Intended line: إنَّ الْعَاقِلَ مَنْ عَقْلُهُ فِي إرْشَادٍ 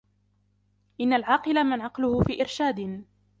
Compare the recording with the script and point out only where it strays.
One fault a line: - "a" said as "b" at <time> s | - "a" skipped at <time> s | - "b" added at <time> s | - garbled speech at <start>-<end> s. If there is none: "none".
none